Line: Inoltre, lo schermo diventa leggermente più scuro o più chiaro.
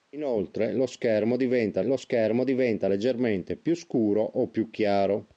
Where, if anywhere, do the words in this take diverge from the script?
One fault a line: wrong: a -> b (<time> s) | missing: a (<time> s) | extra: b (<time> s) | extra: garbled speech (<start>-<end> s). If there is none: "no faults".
extra: lo schermo diventa (1.8 s)